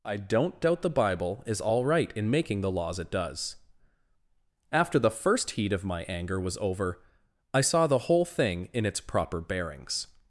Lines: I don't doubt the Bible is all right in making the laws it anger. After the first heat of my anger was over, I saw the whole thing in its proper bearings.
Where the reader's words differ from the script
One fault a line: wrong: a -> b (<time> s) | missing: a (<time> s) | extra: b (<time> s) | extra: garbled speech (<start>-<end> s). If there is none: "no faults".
wrong: anger -> does (3.1 s)